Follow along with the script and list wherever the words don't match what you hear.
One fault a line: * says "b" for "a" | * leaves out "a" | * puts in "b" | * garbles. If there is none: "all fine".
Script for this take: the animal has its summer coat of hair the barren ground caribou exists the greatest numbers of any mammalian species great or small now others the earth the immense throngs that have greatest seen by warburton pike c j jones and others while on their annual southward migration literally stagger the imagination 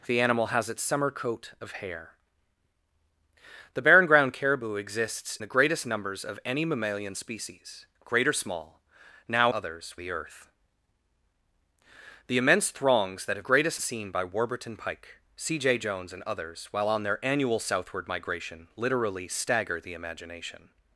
all fine